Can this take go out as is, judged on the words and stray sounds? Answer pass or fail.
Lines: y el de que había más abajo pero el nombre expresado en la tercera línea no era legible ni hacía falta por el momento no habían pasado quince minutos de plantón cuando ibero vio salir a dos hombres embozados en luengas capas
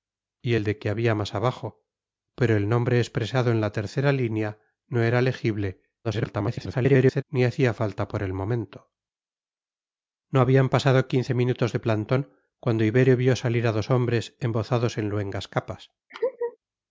fail